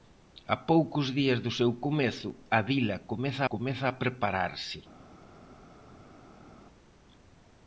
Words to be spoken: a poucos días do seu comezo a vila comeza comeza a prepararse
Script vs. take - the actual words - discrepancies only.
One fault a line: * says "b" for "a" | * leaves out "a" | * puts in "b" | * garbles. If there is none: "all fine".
all fine